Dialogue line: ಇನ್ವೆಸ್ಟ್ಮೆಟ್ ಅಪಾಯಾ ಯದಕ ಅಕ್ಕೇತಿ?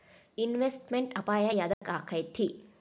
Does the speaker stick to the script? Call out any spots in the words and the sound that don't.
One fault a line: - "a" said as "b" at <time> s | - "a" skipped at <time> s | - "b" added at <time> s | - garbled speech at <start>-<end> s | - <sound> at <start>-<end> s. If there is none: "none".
- dropout at 1.7-1.8 s